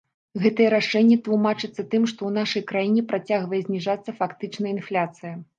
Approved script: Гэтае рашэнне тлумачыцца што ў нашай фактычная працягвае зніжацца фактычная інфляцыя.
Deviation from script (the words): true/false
true